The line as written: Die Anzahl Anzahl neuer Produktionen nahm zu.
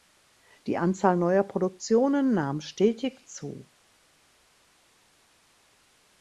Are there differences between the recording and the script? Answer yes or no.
yes